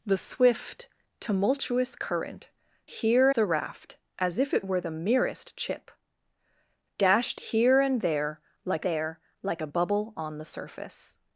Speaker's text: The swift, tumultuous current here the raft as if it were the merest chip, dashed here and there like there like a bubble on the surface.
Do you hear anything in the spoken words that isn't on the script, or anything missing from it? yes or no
no